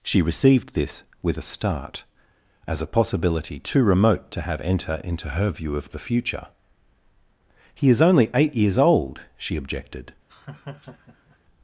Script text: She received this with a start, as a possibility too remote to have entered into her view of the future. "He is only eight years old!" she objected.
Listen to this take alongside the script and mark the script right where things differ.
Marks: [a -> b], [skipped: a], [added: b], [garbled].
She received this with a start, as a possibility too remote to have [entered -> enter] into her view of the future. "He is only eight years old!" she objected.